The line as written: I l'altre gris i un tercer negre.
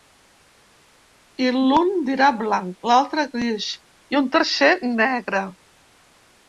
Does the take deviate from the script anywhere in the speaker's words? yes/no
yes